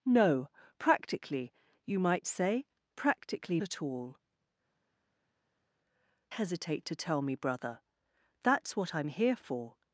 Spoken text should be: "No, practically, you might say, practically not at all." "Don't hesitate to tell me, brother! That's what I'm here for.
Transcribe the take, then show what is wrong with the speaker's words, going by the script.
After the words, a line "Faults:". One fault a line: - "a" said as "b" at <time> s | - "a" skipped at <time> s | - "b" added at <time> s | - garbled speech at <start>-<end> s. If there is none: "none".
"No, practically, you might say, practically at all." "Hesitate to tell me, brother! That's what I'm here for.
Faults:
- "not" skipped at 3.6 s
- "Don't" skipped at 4.2 s